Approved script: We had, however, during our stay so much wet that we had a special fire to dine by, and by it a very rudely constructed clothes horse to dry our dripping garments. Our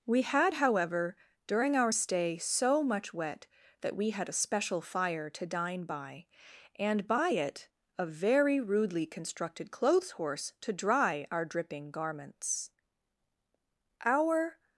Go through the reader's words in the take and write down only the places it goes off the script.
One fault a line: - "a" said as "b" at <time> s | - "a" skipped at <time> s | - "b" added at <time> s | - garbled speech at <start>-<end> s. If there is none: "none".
none